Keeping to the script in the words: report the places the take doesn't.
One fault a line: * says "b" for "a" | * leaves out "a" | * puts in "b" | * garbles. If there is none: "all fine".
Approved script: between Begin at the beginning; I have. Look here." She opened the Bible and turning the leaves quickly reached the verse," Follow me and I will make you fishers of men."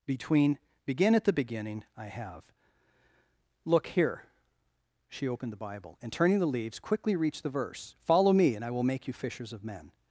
all fine